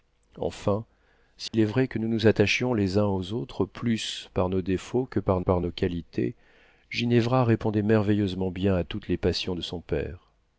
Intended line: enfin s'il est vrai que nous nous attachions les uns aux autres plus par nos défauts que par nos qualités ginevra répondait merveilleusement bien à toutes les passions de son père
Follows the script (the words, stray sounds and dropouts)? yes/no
no